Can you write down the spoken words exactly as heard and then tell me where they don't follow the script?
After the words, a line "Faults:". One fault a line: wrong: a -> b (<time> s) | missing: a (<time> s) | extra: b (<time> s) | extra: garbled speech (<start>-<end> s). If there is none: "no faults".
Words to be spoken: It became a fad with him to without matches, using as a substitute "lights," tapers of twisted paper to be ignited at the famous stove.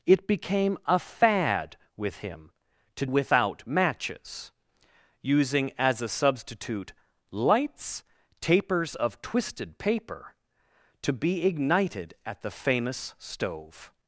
It became a fad with him to without matches, using as a substitute "lights," tapers of twisted paper to be ignited at the famous stove.
Faults:
no faults